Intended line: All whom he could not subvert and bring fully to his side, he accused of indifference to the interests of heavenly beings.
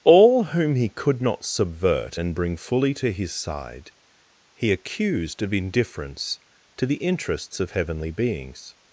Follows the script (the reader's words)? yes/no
yes